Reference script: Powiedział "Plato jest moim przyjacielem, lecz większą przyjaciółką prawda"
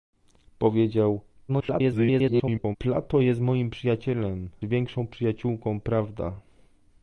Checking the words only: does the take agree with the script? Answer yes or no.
no